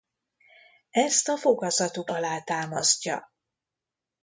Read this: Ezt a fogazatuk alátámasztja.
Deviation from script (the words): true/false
false